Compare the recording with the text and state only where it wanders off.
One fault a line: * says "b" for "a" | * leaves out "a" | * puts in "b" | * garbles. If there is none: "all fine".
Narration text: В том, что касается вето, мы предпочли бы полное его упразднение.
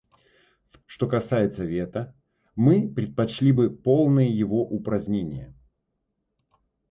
* leaves out "том"